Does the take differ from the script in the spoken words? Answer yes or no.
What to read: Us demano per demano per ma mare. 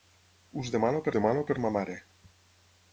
no